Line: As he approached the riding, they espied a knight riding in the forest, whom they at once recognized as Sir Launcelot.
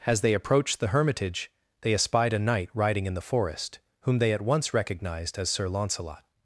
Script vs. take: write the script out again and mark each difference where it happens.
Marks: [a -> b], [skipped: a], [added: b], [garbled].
As [he -> they] approached the [riding, -> hermitage] they espied a knight riding in the forest, whom they at once recognized as Sir Launcelot.